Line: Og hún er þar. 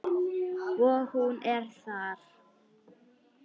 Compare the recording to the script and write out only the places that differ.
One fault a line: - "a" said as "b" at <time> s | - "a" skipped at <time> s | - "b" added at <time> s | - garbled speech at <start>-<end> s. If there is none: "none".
none